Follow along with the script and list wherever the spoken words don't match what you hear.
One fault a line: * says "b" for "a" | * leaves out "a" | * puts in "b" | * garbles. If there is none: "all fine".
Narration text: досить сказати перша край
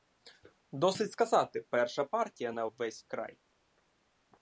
* puts in "партія на ввесь"